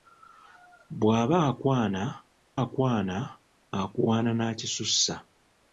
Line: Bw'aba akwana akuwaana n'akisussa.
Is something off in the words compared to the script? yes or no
yes